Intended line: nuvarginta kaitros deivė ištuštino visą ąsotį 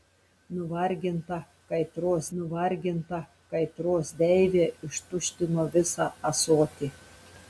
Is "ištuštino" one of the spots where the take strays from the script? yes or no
no